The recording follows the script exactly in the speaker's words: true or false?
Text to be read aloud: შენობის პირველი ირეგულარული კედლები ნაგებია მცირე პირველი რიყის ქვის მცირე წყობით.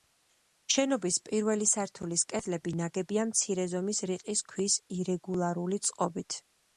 false